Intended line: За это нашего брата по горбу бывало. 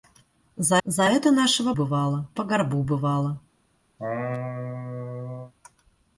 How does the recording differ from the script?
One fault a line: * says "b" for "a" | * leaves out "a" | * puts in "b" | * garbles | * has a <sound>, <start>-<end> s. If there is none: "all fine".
* puts in "за"
* says "бывало" for "брата"
* has a laugh, 4.0-5.5 s